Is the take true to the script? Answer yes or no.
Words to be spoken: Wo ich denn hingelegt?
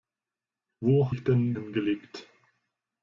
yes